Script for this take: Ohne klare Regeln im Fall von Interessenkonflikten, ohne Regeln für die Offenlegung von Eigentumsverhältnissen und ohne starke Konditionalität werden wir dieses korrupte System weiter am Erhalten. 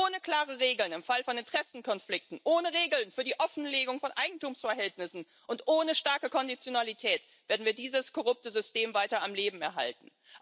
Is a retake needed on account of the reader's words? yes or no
yes